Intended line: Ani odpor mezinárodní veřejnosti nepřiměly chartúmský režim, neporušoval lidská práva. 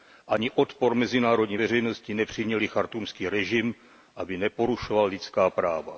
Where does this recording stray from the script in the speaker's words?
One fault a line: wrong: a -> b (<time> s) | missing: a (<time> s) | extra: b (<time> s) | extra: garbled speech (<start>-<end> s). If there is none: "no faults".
extra: aby (4.1 s)